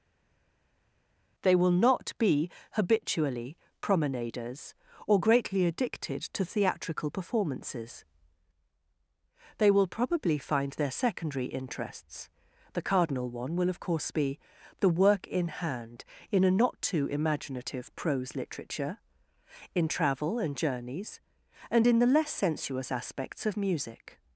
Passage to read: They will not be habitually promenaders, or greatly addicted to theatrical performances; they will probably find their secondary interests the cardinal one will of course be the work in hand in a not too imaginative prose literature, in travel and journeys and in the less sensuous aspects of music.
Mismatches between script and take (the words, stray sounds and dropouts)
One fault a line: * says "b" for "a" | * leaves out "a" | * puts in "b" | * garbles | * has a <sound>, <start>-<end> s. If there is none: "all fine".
all fine